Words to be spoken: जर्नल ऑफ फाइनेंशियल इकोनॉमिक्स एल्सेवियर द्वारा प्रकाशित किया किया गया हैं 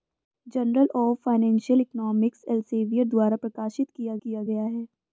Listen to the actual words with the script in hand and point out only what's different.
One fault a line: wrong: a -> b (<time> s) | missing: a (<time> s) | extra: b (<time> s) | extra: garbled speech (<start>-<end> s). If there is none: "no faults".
no faults